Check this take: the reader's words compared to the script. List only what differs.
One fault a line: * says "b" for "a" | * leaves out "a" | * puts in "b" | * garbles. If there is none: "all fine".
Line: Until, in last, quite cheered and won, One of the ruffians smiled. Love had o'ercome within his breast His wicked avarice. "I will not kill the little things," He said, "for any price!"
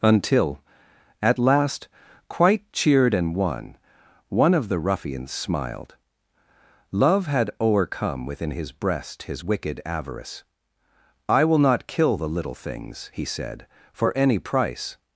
* says "at" for "in"